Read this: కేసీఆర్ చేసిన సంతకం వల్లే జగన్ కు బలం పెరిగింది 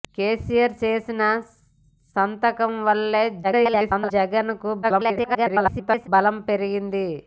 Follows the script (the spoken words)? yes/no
no